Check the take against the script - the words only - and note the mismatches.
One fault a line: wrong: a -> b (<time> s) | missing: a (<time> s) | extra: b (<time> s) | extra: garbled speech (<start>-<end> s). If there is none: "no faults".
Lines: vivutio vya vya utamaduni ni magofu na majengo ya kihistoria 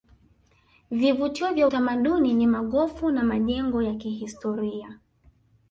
missing: vya (1.7 s)